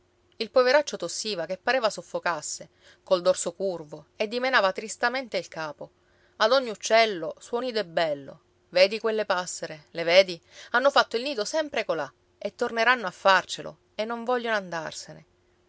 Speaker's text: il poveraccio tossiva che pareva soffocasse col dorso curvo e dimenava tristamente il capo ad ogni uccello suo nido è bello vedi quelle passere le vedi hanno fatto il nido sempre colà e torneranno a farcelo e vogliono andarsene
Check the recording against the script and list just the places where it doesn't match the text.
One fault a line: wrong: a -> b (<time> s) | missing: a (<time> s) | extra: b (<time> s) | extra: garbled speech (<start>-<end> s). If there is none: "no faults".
extra: non (14.1 s)